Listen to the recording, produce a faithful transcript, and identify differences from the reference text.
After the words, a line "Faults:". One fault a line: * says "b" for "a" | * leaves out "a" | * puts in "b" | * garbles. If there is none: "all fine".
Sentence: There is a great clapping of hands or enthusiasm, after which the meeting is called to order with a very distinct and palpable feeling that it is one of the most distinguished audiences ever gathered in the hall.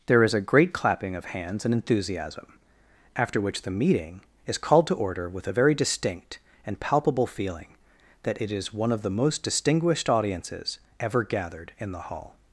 There is a great clapping of hands and enthusiasm, after which the meeting is called to order with a very distinct and palpable feeling that it is one of the most distinguished audiences ever gathered in the hall.
Faults:
* says "and" for "or"